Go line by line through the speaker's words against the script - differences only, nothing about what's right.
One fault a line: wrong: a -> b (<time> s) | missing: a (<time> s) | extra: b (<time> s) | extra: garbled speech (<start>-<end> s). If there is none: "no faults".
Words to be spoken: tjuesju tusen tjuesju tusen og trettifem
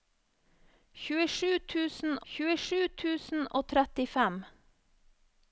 no faults